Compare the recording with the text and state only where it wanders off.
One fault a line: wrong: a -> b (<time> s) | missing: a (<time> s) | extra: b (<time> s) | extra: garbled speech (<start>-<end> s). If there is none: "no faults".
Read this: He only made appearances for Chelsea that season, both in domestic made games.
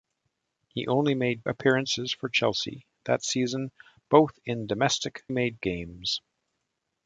no faults